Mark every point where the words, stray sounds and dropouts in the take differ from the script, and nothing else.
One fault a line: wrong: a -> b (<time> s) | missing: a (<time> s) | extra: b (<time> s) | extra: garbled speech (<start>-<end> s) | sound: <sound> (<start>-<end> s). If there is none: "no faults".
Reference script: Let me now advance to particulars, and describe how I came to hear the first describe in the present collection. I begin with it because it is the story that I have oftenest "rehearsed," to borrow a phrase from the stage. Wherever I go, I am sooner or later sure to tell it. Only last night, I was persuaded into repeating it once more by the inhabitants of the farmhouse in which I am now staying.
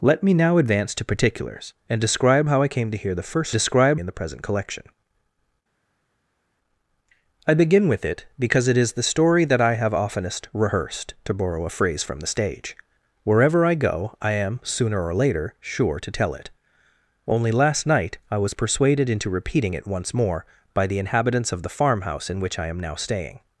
no faults